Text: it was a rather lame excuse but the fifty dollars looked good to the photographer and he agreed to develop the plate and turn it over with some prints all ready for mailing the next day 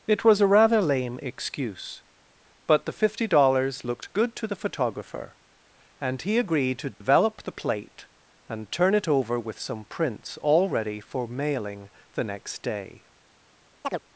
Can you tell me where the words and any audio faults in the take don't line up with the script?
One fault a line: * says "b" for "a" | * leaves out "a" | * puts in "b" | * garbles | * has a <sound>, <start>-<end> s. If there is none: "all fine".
* has a dropout, 6.9-7.0 s
* has a chirp, 13.8-14.0 s